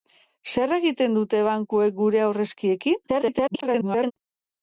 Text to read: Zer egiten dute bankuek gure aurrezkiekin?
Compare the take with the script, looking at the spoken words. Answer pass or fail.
fail